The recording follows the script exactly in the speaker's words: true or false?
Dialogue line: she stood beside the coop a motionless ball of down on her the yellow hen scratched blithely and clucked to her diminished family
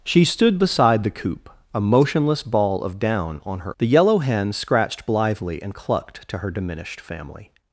true